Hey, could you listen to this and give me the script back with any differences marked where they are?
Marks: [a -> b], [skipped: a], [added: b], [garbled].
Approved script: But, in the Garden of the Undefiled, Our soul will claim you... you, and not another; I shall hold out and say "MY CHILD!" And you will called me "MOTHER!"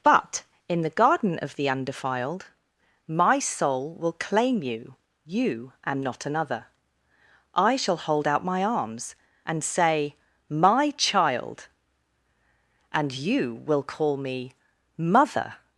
But, in the Garden of the Undefiled, [Our -> My] soul will claim you... you, and not another; I shall hold out [added: my arms] and say "MY CHILD!" And you will [called -> call] me "MOTHER!"